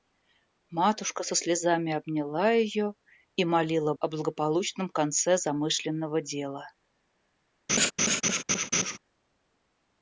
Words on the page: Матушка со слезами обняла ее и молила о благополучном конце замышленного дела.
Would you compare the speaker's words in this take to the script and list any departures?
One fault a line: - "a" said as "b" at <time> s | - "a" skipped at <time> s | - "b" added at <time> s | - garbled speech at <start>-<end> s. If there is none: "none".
none